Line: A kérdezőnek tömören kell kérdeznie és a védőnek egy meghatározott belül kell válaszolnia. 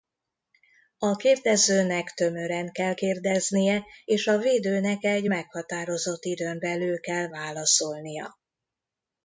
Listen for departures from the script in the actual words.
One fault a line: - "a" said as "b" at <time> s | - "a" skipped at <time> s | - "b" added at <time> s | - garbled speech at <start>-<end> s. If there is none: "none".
- "időn" added at 6.2 s